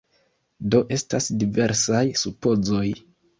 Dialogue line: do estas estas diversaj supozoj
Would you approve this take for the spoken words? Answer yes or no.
no